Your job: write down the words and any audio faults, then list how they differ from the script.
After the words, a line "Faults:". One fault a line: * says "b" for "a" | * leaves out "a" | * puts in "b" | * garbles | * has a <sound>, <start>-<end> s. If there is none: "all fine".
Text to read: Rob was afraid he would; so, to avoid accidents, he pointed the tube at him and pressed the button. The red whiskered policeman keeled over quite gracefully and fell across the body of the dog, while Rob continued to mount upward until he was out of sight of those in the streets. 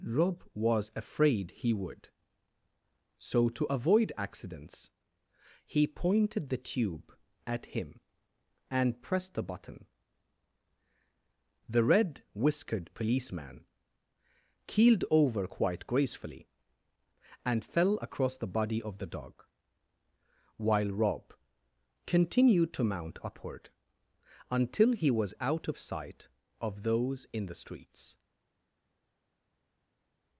Rob was afraid he would; so, to avoid accidents, he pointed the tube at him and pressed the button. The red whiskered policeman keeled over quite gracefully and fell across the body of the dog, while Rob continued to mount upward until he was out of sight of those in the streets.
Faults:
all fine